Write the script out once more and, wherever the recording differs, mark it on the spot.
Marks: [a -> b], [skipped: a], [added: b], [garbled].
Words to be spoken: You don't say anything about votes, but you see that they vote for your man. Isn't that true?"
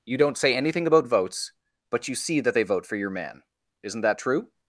You don't say anything about votes, but you see that they vote for your man. Isn't that true?"